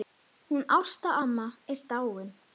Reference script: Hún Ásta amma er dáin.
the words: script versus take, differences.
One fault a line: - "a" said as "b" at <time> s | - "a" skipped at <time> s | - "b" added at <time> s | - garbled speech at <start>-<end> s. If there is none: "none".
none